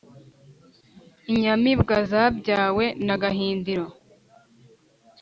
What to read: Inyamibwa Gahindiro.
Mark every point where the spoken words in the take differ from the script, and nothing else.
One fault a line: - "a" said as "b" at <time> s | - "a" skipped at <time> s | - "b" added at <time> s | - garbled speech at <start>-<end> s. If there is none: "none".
- "zabyawe na" added at 2.1 s